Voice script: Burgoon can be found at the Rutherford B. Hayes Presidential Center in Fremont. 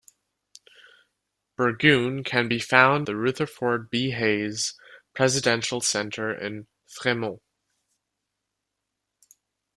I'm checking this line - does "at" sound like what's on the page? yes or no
no